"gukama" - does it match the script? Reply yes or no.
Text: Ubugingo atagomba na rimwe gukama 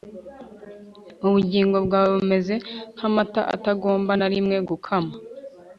yes